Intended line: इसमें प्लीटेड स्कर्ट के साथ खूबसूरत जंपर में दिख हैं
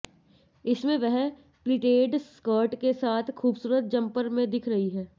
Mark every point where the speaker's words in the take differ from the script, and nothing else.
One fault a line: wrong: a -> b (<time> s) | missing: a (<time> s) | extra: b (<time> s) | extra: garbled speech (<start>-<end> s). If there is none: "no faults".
extra: वह (1.0 s)
extra: रही (4.7 s)